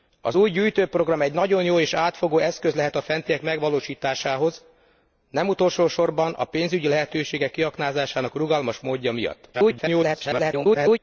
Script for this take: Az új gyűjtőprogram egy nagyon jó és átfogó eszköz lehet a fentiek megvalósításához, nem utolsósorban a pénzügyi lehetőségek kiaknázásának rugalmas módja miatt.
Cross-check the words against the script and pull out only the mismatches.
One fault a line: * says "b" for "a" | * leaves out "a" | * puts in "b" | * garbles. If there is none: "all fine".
* garbles